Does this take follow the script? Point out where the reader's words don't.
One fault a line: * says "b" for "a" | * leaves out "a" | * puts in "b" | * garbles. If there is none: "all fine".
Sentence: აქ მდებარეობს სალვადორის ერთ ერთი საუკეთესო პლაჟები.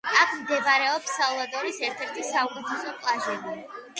all fine